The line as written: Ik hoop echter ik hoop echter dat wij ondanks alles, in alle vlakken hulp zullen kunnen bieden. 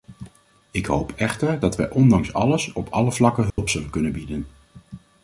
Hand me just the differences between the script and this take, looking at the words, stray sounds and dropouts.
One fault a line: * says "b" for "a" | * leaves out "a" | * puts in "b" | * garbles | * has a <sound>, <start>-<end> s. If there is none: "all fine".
* leaves out "ik hoop echter"
* says "op" for "in"
* has a dropout, 3.5-3.6 s